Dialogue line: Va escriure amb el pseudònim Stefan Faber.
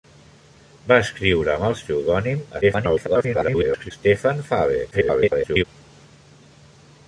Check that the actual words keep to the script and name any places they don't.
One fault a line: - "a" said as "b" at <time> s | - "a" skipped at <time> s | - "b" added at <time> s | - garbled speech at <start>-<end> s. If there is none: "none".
- garbled speech at 2.6-3.9 s
- garbled speech at 4.9-5.6 s